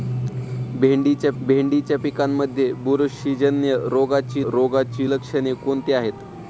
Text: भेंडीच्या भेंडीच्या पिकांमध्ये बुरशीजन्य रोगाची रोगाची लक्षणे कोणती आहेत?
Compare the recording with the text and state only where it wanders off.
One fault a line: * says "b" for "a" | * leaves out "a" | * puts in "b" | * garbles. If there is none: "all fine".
all fine